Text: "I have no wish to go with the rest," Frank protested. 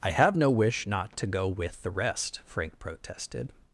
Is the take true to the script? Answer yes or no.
no